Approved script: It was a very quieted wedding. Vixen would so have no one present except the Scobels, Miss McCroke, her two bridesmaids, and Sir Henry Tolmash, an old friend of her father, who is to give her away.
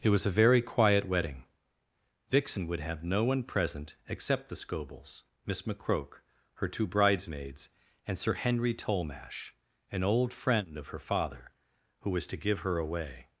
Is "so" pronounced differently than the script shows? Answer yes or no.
yes